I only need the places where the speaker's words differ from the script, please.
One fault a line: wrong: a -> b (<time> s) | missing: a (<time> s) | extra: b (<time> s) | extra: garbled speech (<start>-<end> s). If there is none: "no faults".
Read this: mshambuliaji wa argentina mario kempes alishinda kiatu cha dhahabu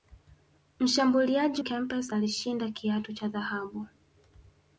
missing: wa argentina mario (1.6 s)